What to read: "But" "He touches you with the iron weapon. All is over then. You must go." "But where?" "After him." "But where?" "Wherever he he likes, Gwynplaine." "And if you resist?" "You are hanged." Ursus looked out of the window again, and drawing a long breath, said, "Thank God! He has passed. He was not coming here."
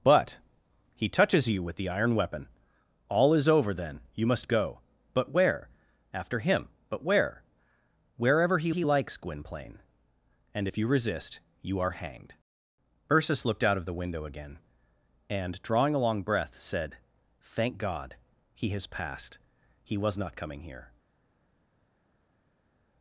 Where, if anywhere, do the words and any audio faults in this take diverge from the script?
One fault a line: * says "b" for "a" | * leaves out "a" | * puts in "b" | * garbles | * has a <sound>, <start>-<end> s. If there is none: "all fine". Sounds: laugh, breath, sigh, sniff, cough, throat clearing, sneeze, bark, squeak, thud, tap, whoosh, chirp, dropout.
all fine